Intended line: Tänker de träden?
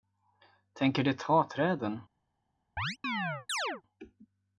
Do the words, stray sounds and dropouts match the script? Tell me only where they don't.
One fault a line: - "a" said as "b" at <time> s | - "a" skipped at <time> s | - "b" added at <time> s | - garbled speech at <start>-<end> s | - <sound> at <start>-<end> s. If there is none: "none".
- "ta" added at 1.1 s
- chirp at 2.8-3.8 s